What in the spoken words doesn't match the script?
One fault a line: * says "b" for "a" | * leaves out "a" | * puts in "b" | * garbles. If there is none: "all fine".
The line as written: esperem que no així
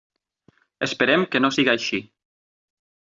* puts in "siga"